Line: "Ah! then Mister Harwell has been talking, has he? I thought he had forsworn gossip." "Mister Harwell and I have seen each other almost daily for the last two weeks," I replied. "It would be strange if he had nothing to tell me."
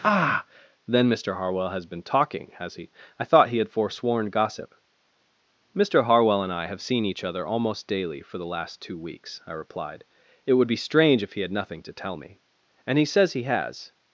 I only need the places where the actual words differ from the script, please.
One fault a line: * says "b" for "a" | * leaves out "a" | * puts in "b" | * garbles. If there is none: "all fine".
* puts in "And he says he has"